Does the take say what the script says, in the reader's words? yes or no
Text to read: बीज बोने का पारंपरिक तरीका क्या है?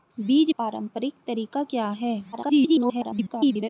no